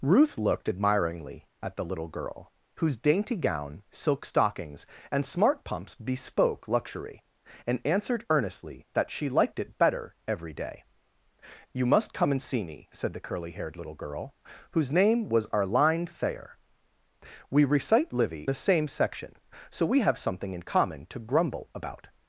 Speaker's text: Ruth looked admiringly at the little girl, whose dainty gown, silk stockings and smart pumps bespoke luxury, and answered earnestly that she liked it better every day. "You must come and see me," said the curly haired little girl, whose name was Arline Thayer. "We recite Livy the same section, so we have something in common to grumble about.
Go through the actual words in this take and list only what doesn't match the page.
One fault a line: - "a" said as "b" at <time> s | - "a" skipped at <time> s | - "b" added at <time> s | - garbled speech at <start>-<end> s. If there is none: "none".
none